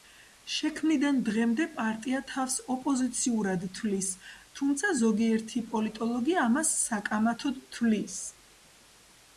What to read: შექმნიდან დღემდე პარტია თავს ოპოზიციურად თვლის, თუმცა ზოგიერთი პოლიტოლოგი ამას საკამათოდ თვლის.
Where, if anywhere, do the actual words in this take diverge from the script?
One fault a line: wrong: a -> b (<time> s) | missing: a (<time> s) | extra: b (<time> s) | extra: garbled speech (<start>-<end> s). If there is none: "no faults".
no faults